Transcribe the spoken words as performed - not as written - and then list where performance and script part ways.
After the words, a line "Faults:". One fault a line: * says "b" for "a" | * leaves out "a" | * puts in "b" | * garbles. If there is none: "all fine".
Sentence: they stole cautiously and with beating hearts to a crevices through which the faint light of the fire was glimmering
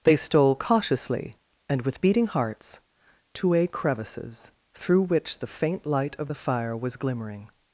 they stole cautiously and with beating hearts to a crevices through which the faint light of the fire was glimmering
Faults:
all fine